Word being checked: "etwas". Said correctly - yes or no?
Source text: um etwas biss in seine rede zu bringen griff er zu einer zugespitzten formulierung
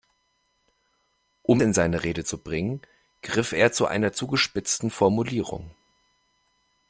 no